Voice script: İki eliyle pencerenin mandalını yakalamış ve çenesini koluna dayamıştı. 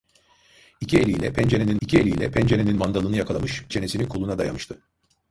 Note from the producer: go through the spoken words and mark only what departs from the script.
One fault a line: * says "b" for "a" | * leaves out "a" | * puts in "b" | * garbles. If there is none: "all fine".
* puts in "i̇ki eliyle pencerenin"
* leaves out "ve"